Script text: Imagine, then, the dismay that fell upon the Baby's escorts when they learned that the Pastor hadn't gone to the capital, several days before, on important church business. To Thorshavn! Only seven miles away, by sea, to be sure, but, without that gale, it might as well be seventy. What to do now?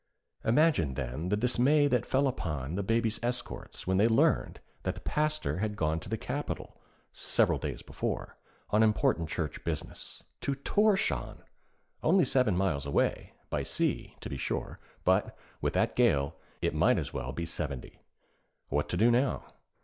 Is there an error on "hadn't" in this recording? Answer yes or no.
yes